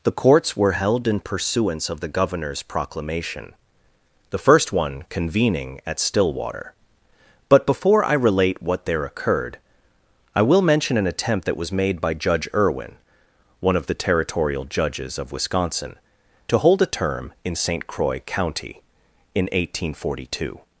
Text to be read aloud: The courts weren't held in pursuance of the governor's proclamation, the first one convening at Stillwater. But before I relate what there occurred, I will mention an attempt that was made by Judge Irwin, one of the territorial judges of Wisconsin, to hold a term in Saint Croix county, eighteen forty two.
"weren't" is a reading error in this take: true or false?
true